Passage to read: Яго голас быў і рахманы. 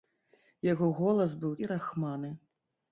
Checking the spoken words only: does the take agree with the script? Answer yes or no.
yes